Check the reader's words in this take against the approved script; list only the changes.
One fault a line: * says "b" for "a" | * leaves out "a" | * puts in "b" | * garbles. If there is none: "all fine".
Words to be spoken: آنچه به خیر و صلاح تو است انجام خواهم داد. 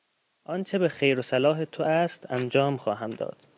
all fine